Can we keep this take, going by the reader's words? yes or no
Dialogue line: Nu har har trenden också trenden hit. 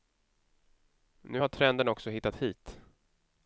no